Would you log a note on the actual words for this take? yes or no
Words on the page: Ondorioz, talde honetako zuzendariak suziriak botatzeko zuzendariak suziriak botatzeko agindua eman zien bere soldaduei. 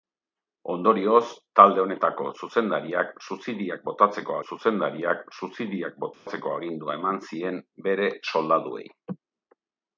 no